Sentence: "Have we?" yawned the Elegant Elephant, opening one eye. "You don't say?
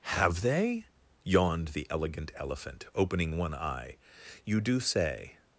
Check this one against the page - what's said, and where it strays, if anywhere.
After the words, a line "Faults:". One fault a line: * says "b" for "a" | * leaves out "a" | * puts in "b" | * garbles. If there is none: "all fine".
"Have they?" yawned the Elegant Elephant, opening one eye. "You do say?
Faults:
* says "they" for "we"
* says "do" for "don't"